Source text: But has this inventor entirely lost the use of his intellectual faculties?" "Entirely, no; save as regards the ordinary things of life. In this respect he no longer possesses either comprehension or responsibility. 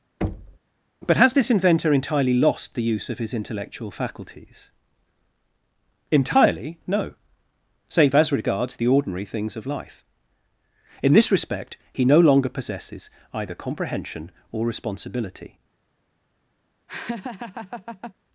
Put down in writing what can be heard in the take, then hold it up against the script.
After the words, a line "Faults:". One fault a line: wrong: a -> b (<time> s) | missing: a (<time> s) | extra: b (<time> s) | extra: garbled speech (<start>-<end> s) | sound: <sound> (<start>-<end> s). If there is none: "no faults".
But has this inventor entirely lost the use of his intellectual faculties?" "Entirely, no; save as regards the ordinary things of life. In this respect he no longer possesses either comprehension or responsibility.
Faults:
sound: thud (0.2-0.6 s)
sound: laugh (16.9-18.1 s)